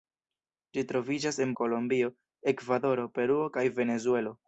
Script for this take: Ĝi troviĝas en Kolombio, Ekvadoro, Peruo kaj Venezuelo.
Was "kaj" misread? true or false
false